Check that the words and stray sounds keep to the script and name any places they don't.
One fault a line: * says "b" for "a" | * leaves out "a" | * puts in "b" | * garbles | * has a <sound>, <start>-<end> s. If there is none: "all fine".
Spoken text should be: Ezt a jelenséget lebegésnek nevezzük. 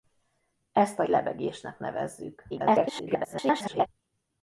* leaves out "jelenséget"
* garbles